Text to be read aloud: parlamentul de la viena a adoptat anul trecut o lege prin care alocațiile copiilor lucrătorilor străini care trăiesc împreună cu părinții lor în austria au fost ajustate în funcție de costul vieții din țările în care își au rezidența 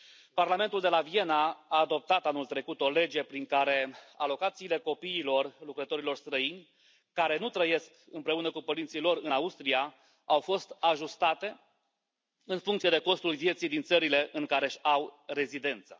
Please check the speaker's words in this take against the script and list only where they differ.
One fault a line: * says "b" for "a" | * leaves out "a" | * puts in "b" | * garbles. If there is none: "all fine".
* puts in "nu"